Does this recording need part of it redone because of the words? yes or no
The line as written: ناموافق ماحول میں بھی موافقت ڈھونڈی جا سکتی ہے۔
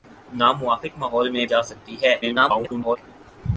yes